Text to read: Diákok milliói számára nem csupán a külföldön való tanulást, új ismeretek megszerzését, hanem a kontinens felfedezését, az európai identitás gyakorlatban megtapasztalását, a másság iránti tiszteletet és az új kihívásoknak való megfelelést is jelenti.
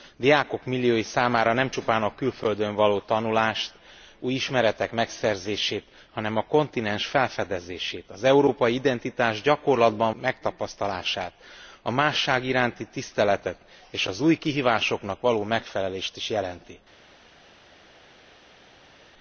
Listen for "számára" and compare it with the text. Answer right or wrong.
right